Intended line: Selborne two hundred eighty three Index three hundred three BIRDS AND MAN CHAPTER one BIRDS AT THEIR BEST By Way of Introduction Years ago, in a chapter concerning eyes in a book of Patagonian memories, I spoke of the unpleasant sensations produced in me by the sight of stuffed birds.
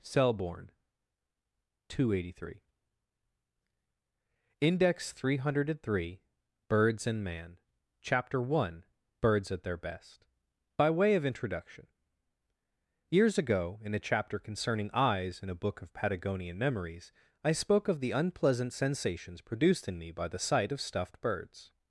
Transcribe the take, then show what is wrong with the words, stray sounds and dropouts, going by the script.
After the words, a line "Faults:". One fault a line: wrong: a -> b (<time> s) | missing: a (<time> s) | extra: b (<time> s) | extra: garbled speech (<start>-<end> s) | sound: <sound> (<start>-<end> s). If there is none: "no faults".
Selborne two hundred eighty three Index three hundred three BIRDS AND MAN CHAPTER one BIRDS AT THEIR BEST By Way of Introduction Years ago, in a chapter concerning eyes in a book of Patagonian memories, I spoke of the unpleasant sensations produced in me by the sight of stuffed birds.
Faults:
no faults